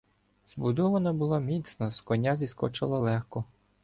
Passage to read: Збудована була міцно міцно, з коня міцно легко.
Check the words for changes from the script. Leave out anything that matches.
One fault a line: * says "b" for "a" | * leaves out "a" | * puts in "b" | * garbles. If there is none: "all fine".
* leaves out "міцно"
* says "зіскочила" for "міцно"